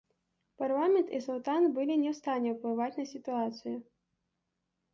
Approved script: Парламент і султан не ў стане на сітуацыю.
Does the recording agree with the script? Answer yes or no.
no